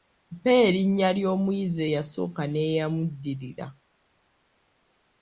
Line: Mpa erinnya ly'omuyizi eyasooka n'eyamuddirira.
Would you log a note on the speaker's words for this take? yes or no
no